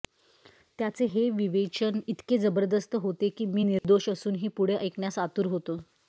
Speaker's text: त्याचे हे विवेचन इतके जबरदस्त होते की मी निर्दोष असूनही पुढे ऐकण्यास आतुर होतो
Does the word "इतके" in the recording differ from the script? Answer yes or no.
no